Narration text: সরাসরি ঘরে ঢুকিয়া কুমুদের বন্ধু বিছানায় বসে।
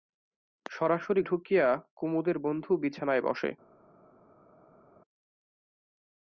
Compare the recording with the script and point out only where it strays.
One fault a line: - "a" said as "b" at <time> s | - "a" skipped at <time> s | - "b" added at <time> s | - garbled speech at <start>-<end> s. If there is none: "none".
- "ঘরে" skipped at 1.2 s